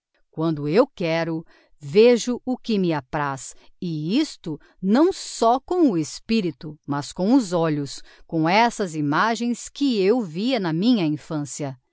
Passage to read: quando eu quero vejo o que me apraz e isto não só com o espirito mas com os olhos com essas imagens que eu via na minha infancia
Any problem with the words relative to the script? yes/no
no